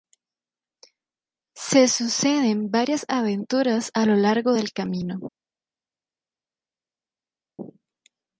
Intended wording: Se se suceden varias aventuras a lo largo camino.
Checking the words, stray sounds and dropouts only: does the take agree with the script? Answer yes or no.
no